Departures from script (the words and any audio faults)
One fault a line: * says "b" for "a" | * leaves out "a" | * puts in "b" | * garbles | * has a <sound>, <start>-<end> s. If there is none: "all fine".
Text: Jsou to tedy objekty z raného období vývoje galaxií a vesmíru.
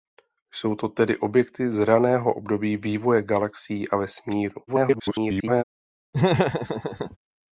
* garbles
* has a laugh, 6.1-7.2 s